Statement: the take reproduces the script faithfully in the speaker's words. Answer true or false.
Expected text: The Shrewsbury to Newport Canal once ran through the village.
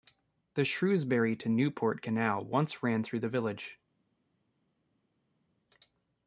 true